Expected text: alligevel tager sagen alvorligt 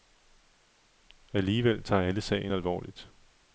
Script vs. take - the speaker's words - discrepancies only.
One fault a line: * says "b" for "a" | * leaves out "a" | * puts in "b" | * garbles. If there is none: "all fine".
* puts in "alle"